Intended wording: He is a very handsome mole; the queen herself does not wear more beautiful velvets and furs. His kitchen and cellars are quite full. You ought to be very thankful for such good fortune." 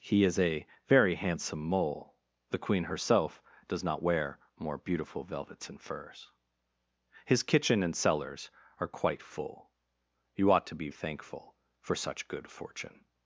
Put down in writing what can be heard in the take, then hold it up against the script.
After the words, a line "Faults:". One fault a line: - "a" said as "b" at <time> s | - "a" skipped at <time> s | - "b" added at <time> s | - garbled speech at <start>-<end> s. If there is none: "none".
He is a very handsome mole; the queen herself does not wear more beautiful velvets and furs. His kitchen and cellars are quite full. You ought to be thankful for such good fortune."
Faults:
- "very" skipped at 10.9 s